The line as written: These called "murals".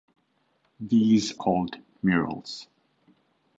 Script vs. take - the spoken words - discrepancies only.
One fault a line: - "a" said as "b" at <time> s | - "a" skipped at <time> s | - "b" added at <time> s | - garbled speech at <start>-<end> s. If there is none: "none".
none